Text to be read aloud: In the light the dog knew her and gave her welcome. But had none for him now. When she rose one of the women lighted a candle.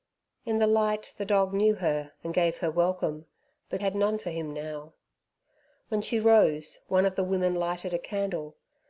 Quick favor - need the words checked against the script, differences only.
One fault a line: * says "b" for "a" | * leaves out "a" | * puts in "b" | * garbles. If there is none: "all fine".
all fine